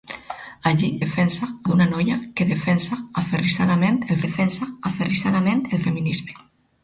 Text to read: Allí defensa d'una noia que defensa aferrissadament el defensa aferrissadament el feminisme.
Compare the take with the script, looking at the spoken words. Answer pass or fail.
pass